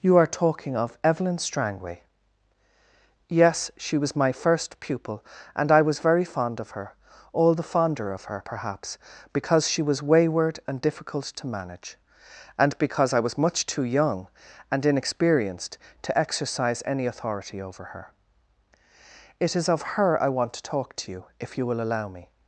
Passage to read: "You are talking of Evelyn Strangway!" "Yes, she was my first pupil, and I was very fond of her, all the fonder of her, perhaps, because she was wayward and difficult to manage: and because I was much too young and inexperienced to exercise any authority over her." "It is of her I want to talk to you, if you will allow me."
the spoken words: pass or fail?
pass